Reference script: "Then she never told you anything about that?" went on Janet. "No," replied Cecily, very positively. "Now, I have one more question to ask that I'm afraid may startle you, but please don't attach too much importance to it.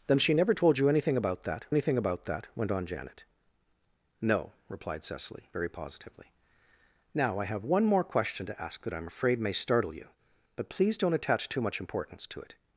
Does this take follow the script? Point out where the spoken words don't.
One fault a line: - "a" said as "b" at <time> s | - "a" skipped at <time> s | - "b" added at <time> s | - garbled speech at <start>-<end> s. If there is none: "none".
- "anything about that" added at 1.7 s